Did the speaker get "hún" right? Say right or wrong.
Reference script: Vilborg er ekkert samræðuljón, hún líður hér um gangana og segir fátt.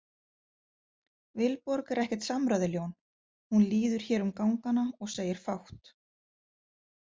right